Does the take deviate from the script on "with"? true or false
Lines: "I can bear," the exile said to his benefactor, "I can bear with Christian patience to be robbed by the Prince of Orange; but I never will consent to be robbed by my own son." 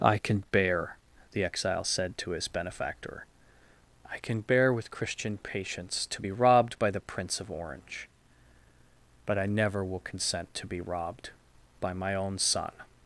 false